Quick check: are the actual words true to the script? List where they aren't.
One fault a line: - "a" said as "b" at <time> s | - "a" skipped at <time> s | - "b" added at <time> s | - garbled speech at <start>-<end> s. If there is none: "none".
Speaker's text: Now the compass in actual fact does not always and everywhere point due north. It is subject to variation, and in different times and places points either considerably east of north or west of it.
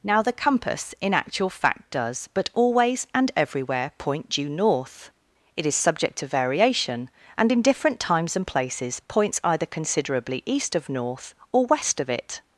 - "not" said as "but" at 2.3 s